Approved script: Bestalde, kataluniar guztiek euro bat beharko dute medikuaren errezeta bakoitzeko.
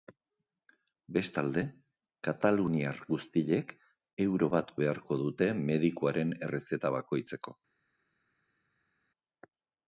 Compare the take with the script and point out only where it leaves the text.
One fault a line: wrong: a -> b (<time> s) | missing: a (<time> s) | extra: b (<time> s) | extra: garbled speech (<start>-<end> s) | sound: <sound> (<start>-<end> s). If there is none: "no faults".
no faults